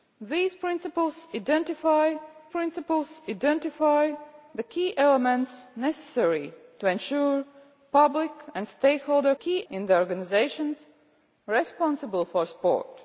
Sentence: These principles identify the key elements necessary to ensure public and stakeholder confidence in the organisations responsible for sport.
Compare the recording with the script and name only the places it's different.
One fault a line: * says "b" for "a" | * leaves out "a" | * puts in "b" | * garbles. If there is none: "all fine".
* puts in "principles identify"
* says "key" for "confidence"